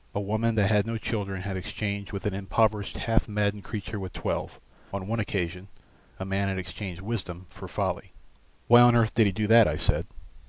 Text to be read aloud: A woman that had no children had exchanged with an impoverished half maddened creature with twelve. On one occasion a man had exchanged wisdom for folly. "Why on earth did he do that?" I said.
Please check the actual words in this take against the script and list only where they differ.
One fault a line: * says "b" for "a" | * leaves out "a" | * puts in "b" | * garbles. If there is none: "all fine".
all fine